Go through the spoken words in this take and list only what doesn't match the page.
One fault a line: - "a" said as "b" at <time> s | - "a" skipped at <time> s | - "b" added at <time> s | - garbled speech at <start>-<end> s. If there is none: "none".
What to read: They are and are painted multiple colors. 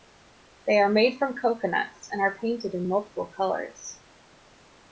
- "made from coconuts" added at 0.9 s
- "in" added at 2.7 s